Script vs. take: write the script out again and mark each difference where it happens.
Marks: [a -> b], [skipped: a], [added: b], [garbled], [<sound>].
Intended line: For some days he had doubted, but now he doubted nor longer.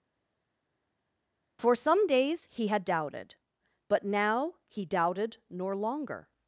For some days he had doubted, but now he doubted nor longer.